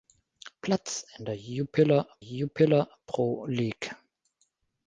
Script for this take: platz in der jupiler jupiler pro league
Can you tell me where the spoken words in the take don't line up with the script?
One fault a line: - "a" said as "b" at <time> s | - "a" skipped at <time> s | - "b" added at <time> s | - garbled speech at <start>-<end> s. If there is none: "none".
none